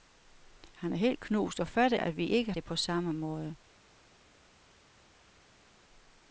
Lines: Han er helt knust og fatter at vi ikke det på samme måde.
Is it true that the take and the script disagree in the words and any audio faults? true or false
false